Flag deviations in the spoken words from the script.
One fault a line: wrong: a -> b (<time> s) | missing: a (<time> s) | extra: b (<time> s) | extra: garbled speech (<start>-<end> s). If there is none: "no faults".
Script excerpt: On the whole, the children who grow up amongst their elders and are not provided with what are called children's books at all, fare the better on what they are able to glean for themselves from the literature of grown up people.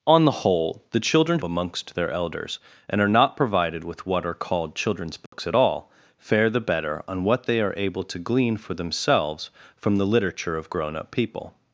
missing: who grow up (1.4 s)